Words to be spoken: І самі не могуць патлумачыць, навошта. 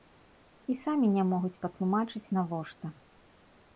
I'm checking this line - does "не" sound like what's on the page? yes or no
yes